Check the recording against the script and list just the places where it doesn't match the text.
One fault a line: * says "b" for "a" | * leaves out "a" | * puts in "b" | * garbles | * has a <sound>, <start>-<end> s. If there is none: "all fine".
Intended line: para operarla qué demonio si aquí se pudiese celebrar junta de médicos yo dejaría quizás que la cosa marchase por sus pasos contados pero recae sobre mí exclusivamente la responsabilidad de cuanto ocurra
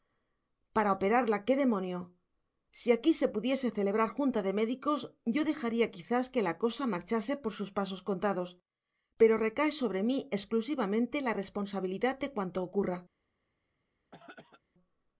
* has a throat clearing, 14.1-14.6 s